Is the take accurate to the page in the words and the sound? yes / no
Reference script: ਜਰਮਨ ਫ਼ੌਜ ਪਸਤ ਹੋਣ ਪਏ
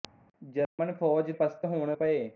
no